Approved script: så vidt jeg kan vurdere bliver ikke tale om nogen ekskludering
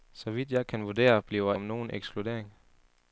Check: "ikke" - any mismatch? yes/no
yes